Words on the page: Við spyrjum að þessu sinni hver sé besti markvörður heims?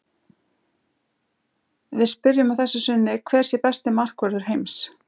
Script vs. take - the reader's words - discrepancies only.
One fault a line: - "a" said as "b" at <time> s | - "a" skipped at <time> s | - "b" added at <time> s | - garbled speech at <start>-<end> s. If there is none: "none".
none